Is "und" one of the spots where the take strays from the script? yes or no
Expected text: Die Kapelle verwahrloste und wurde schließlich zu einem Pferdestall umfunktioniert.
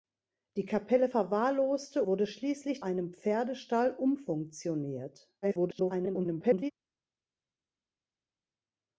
yes